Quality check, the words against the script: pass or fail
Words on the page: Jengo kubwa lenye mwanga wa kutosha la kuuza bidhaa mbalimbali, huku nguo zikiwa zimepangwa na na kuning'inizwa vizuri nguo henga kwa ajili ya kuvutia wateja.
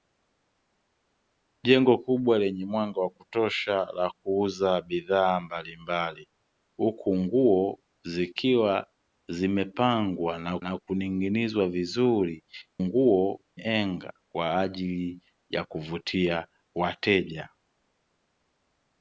pass